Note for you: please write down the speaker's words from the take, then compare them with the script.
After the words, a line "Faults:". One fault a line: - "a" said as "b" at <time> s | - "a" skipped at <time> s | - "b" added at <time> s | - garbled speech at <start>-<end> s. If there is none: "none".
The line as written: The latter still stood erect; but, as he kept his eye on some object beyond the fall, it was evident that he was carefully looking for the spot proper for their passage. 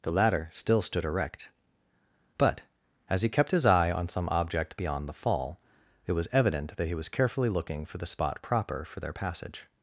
The latter still stood erect; but, as he kept his eye on some object beyond the fall, it was evident that he was carefully looking for the spot proper for their passage.
Faults:
none